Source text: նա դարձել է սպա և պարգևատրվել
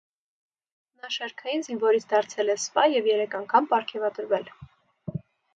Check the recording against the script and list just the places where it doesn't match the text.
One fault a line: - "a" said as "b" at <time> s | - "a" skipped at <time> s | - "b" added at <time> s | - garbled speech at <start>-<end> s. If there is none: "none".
- "շարքային զինվորից" added at 1.1 s
- "երեք անգամ" added at 3.1 s